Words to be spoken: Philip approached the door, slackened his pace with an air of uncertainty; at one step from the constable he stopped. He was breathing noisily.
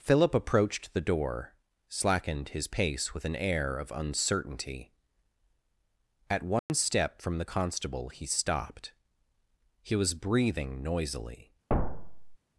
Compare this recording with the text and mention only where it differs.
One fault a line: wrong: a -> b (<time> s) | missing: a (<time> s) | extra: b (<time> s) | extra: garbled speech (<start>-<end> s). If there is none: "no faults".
no faults